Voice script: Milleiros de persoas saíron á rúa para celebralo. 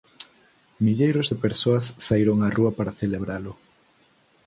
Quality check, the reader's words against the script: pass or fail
pass